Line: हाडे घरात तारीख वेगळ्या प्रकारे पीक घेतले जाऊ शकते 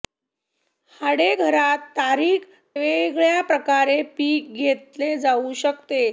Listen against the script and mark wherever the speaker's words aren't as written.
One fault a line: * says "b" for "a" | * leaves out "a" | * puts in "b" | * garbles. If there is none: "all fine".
all fine